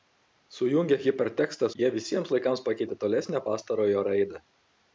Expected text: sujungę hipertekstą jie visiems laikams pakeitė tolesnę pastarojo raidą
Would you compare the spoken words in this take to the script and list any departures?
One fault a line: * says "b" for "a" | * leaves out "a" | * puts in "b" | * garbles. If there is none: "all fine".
all fine